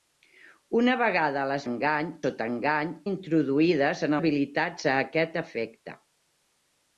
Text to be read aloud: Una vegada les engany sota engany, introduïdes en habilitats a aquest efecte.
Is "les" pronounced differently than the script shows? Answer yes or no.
no